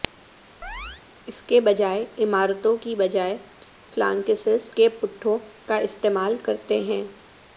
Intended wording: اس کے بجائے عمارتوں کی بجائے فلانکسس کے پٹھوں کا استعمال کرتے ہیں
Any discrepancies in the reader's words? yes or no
no